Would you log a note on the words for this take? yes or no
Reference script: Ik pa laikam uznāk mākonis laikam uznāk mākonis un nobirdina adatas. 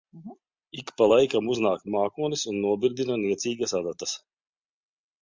yes